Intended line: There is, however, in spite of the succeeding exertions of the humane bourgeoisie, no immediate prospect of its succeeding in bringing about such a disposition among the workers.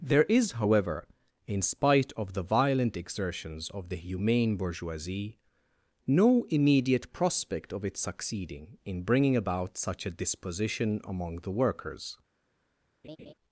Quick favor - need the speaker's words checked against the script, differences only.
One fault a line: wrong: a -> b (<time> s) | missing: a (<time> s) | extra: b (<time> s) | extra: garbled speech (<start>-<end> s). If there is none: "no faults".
wrong: succeeding -> violent (2.4 s)